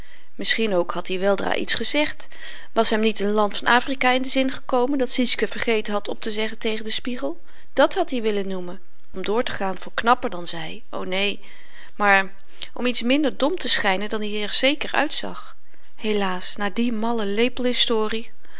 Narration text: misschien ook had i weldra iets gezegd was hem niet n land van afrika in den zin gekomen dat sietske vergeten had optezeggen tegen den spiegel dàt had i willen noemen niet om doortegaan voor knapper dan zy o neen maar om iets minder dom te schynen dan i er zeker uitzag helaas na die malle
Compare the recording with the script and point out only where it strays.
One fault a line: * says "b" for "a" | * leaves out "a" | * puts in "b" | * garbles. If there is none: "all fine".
* leaves out "niet"